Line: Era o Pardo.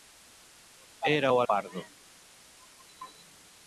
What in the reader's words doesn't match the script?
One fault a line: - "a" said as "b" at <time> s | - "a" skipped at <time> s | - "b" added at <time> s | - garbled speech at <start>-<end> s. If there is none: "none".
none